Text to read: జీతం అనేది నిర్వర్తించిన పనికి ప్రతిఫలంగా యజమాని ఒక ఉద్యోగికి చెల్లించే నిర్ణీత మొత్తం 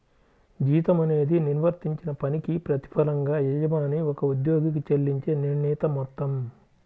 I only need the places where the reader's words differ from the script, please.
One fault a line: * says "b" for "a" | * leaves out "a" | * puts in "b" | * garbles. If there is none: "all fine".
all fine